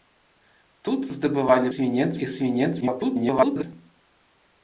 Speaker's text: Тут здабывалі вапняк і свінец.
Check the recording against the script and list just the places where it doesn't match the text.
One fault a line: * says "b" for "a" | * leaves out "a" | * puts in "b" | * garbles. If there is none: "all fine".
* says "свінец" for "вапняк"
* garbles